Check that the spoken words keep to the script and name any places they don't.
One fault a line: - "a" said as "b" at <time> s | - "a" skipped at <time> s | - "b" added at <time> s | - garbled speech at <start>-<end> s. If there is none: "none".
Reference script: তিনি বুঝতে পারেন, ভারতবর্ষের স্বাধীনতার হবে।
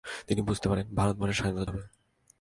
none